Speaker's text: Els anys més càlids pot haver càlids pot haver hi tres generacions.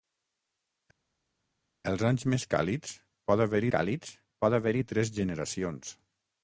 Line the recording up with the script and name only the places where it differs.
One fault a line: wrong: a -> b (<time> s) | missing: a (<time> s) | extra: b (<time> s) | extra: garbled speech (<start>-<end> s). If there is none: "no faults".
no faults